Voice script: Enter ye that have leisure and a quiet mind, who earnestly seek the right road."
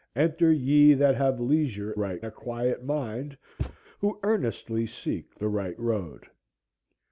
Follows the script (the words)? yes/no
no